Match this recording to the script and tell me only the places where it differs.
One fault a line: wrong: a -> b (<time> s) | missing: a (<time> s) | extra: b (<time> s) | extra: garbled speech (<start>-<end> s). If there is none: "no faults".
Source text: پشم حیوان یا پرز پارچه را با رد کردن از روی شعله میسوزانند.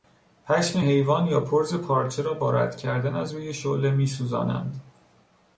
no faults